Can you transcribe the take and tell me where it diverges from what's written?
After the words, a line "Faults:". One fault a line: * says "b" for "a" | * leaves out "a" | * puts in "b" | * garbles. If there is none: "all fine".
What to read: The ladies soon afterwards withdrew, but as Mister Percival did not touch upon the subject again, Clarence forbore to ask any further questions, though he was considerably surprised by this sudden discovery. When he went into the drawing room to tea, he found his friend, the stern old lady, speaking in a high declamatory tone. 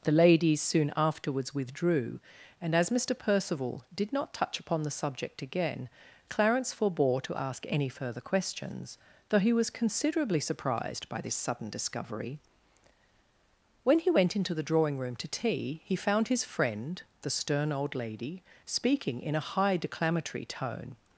The ladies soon afterwards withdrew, and as Mister Percival did not touch upon the subject again, Clarence forbore to ask any further questions, though he was considerably surprised by this sudden discovery. When he went into the drawing room to tea, he found his friend, the stern old lady, speaking in a high declamatory tone.
Faults:
* says "and" for "but"